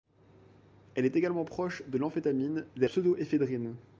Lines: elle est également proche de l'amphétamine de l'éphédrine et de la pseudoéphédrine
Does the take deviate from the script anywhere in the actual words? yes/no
yes